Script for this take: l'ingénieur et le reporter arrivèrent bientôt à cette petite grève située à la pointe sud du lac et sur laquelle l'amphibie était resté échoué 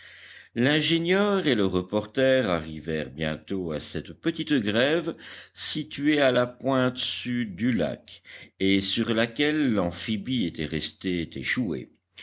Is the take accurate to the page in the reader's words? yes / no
yes